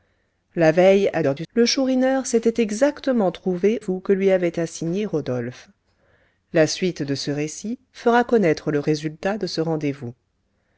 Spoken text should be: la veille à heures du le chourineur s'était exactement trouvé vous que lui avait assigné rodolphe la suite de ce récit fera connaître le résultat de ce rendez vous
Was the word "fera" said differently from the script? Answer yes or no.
no